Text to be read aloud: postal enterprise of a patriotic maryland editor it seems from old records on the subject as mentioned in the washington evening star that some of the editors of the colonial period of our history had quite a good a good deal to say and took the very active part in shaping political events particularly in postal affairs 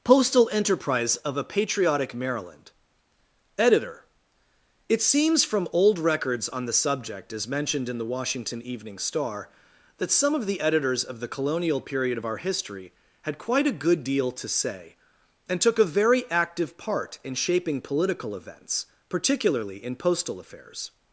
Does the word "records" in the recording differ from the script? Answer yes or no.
no